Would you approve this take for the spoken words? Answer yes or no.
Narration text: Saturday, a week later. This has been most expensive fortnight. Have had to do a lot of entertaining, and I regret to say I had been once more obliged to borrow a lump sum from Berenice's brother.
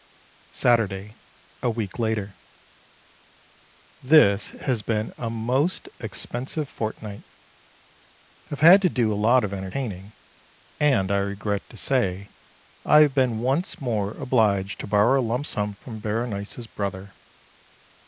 no